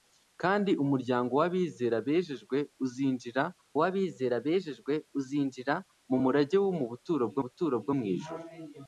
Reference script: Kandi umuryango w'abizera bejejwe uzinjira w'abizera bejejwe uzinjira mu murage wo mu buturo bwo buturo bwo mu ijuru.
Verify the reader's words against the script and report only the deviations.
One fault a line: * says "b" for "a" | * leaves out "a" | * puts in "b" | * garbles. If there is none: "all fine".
all fine